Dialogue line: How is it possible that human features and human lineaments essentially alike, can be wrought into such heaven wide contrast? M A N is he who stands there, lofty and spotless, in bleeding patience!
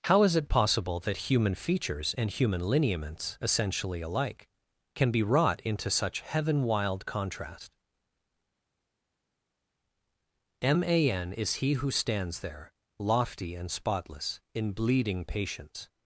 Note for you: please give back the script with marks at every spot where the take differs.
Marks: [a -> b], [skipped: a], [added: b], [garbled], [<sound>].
How is it possible that human features and human lineaments essentially alike, can be wrought into such heaven [wide -> wild] contrast? M A N is he who stands there, lofty and spotless, in bleeding patience!